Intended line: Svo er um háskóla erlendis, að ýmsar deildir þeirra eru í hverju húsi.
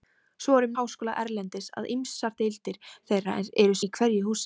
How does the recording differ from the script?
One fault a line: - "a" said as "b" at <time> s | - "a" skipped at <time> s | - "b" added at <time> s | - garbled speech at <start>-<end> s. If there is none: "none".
none